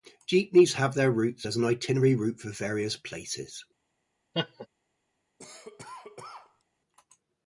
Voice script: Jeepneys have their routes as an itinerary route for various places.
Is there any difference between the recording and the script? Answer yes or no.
no